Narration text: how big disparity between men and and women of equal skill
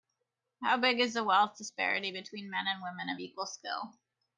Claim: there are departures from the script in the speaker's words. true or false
true